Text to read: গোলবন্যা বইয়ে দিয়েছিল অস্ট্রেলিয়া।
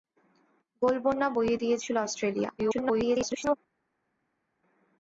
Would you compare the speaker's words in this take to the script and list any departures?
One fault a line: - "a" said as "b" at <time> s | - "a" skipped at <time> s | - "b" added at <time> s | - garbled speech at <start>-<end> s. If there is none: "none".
- garbled speech at 2.6-3.6 s